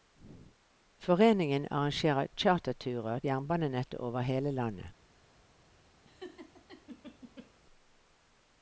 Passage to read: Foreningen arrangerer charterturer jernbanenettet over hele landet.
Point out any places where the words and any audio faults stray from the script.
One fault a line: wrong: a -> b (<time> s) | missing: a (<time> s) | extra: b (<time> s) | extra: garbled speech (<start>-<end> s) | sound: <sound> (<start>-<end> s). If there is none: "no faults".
sound: laugh (6.0-7.5 s)